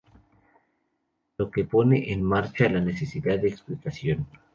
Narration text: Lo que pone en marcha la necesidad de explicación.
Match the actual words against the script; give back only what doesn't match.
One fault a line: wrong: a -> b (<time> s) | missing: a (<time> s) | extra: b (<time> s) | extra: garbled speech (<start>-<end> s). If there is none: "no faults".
no faults